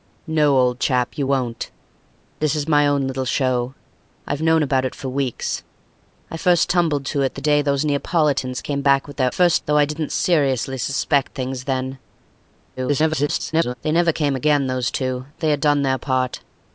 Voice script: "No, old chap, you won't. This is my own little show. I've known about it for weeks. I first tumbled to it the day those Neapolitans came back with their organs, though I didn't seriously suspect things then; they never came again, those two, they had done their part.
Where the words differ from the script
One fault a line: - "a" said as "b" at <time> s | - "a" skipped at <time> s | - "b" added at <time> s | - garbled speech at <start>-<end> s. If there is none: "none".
- "organs" said as "first" at 9.3 s
- garbled speech at 12.8-13.7 s